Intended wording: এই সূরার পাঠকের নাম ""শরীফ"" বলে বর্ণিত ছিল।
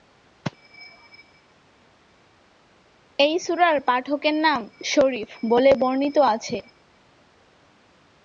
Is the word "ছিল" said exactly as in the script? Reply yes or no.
no